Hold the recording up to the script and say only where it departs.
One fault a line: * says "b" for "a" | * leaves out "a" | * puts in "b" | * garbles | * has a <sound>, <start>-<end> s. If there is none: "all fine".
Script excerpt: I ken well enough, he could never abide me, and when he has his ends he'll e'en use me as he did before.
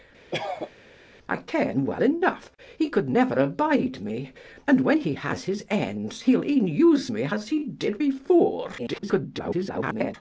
* has a cough, 0.3-0.7 s
* garbles